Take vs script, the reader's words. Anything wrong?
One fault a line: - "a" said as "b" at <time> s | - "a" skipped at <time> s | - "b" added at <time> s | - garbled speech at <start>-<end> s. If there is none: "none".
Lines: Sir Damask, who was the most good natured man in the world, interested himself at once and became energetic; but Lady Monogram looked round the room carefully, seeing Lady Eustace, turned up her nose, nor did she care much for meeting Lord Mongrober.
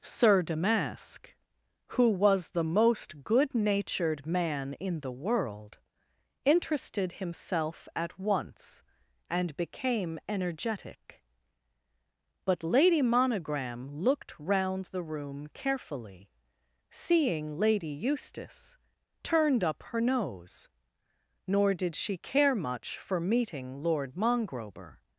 none